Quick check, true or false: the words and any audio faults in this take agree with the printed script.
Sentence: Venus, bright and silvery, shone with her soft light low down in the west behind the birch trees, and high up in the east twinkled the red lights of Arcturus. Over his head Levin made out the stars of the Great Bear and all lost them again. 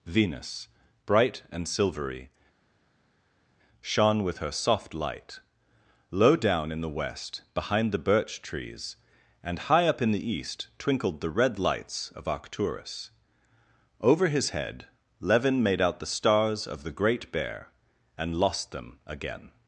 false